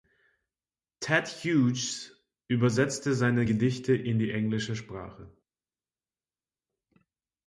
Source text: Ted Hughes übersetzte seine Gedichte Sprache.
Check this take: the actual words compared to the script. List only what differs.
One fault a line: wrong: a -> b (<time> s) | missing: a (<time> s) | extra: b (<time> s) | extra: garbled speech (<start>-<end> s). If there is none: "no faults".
extra: in die englische (3.9 s)